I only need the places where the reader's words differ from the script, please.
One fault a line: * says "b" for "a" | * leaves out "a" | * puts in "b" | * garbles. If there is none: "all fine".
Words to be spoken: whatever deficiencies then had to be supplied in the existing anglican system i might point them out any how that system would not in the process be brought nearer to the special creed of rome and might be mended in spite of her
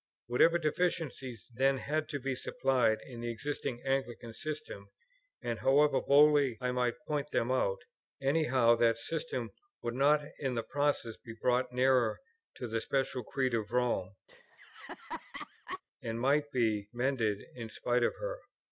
* puts in "and however boldly"